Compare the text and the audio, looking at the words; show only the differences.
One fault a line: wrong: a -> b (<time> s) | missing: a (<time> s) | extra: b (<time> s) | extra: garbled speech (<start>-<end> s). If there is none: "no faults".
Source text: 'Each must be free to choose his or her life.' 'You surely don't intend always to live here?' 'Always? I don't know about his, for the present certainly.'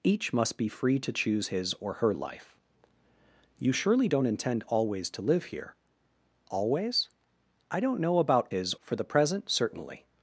no faults